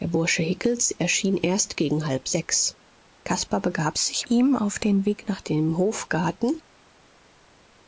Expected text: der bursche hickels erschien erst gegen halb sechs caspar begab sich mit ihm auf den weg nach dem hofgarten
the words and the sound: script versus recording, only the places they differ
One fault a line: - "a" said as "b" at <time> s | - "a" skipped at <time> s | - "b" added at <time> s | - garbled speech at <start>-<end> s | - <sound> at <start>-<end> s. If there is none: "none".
- "mit" skipped at 4.3 s